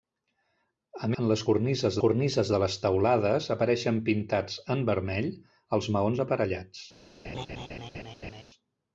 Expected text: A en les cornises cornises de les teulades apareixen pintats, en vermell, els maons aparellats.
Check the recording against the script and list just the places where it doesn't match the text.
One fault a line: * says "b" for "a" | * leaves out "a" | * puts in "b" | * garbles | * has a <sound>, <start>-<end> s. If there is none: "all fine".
* has a laugh, 7.2-8.4 s